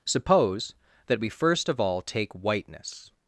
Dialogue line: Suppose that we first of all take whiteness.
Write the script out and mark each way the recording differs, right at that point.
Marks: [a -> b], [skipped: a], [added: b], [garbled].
Suppose that we first of all take whiteness.